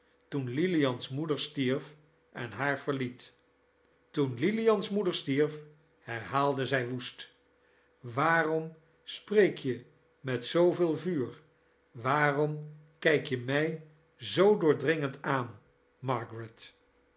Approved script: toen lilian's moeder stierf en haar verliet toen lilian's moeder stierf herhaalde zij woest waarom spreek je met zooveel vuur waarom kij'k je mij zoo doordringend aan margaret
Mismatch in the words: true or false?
false